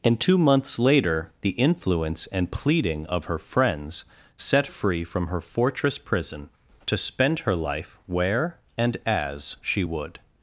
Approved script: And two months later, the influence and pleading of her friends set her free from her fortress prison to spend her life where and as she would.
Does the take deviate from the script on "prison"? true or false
false